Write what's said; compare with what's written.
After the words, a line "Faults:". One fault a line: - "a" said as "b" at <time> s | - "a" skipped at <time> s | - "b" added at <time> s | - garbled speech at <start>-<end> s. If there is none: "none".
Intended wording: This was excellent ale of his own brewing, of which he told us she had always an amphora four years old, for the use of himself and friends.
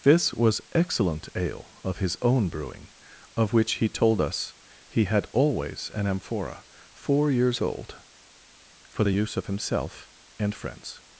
This was excellent ale of his own brewing, of which he told us he had always an amphora four years old, for the use of himself and friends.
Faults:
- "she" said as "he" at 4.9 s